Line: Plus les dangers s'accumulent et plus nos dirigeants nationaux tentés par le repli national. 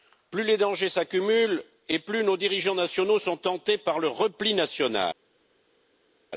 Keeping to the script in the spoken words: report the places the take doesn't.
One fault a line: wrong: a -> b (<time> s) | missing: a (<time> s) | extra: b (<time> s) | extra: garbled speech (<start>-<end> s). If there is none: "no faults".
extra: sont (3.2 s)